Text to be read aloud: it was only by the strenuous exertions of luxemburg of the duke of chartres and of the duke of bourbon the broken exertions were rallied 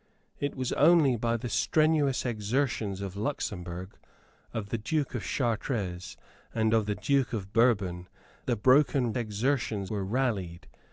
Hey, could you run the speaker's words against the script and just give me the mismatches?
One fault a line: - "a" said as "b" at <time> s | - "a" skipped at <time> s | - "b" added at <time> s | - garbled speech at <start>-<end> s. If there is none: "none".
none